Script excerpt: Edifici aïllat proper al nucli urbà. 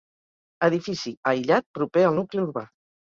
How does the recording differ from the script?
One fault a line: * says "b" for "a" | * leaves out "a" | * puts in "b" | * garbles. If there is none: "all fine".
all fine